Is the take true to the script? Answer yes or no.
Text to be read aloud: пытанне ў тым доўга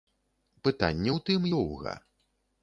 yes